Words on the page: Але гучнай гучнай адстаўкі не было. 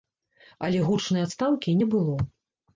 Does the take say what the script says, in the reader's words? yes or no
no